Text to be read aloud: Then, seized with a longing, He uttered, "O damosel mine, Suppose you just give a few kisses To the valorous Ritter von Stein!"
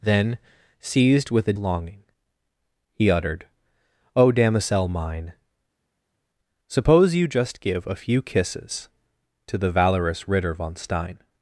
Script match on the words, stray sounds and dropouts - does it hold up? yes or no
yes